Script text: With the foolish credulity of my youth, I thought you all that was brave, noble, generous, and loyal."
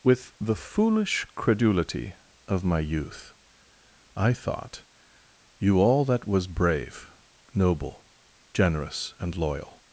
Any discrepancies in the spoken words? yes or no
no